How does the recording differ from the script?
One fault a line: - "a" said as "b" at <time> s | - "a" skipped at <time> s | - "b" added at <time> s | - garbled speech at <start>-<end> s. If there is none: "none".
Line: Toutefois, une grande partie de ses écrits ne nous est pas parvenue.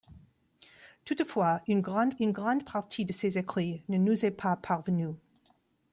- "une grande" added at 2.2 s